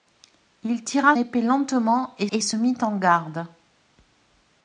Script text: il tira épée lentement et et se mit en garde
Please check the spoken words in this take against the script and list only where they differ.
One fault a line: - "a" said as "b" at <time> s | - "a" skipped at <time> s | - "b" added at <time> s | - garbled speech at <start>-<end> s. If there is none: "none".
none